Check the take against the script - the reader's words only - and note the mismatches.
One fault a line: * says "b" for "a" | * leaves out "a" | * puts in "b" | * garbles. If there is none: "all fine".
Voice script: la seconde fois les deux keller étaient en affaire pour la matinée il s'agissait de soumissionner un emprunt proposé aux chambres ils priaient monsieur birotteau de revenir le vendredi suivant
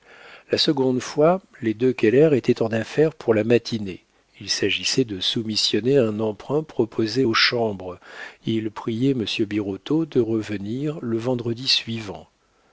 all fine